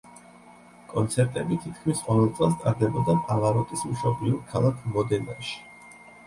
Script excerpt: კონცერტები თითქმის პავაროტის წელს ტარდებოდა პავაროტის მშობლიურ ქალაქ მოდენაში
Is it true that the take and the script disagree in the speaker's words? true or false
true